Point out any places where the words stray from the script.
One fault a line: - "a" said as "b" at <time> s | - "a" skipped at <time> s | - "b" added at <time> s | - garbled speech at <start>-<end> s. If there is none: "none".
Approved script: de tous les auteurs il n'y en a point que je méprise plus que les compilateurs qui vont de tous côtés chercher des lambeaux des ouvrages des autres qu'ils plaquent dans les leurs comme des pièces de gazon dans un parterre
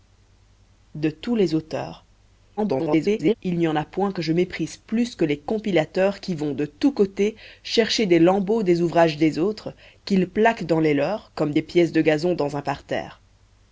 - garbled speech at 2.6-3.3 s